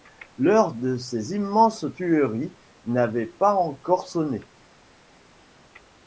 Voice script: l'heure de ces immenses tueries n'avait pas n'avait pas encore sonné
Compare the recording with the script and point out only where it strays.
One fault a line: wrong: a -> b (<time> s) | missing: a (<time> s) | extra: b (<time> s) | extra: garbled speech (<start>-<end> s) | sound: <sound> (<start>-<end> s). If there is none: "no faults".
missing: n'avait pas (3.5 s)